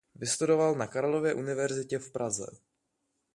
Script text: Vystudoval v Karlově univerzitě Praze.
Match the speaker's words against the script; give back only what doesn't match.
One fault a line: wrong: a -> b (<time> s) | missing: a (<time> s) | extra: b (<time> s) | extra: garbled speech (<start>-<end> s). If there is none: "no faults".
wrong: v -> na (0.8 s)
extra: v (2.0 s)